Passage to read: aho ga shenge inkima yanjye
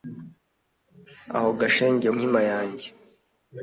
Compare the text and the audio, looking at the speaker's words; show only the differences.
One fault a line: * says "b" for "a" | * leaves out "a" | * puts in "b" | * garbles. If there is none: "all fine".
all fine